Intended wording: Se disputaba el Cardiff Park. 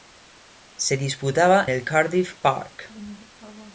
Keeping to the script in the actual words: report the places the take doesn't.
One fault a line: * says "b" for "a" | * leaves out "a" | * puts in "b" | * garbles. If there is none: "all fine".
all fine